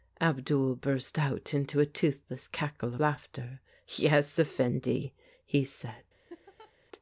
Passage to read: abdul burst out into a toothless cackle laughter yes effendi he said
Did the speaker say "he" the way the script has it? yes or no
yes